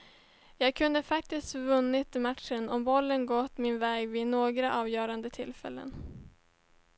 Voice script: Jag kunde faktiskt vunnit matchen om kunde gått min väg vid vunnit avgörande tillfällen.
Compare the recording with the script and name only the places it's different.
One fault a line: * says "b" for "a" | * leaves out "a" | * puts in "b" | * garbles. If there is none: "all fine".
* says "bollen" for "kunde"
* says "några" for "vunnit"